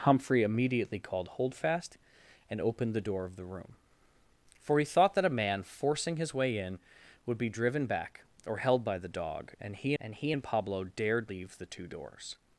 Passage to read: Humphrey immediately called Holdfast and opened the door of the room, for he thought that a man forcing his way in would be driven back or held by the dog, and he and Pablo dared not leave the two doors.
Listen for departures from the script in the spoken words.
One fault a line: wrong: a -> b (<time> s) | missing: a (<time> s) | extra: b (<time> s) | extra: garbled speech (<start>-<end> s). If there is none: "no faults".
extra: he and (10.1 s)
missing: not (11.3 s)